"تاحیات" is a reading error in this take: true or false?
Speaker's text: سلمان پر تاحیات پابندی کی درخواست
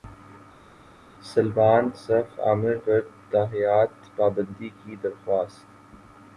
false